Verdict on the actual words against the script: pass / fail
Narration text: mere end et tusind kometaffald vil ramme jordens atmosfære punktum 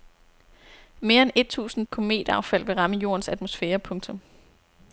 pass